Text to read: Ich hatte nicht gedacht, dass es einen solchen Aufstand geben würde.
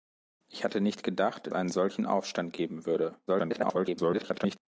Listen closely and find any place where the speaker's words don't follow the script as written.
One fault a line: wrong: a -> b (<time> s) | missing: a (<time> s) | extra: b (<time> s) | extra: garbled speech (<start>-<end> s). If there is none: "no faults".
missing: dass es (1.5 s)
extra: garbled speech (3.3-4.6 s)